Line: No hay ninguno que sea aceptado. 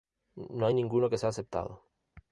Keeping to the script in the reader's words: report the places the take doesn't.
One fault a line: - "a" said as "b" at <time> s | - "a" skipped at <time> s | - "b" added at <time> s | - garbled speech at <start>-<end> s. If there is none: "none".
none